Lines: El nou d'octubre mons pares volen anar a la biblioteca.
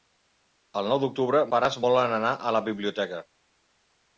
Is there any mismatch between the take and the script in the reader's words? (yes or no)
yes